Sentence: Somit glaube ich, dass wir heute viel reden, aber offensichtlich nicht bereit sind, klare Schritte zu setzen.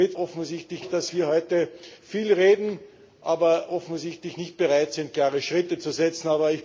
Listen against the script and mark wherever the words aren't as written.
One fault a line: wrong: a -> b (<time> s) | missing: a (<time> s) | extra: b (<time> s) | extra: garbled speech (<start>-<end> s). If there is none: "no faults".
wrong: glaube -> offensichtlich (0.2 s)